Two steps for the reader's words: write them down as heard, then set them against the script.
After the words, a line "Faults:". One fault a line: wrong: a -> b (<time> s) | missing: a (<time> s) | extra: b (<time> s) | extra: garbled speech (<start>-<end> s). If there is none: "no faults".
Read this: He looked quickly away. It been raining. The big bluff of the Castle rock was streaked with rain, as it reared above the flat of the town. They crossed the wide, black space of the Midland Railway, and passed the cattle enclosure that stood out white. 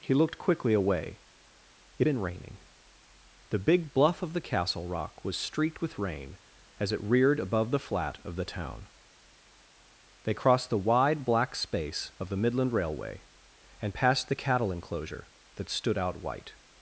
He looked quickly away. It been raining. The big bluff of the Castle rock was streaked with rain, as it reared above the flat of the town. They crossed the wide, black space of the Midland Railway, and passed the cattle enclosure that stood out white.
Faults:
no faults